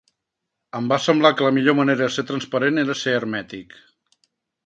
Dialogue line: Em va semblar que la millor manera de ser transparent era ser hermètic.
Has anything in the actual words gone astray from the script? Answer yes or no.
no